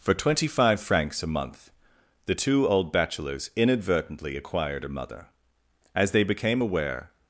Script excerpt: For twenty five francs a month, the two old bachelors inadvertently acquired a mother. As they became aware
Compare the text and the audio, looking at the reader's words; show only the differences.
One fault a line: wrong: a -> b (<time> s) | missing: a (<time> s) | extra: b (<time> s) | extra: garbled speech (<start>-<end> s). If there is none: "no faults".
no faults